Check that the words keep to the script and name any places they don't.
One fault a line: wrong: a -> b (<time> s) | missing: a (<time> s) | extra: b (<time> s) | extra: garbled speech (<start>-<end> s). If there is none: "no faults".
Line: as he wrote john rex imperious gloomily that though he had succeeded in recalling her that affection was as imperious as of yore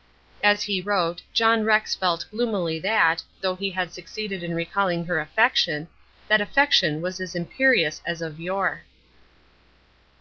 wrong: imperious -> felt (1.9 s)
extra: affection (5.2 s)